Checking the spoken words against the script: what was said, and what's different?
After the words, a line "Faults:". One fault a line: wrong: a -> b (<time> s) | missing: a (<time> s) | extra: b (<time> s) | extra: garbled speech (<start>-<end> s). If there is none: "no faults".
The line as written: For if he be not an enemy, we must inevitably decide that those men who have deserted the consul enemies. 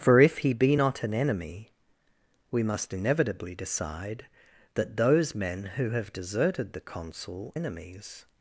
For if he be not an enemy, we must inevitably decide that those men who have deserted the consul enemies.
Faults:
no faults